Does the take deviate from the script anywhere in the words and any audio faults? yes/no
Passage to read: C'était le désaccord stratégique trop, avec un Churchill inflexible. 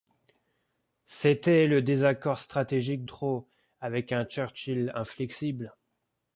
no